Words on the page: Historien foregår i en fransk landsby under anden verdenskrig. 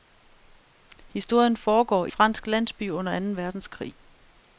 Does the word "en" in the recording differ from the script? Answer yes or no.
yes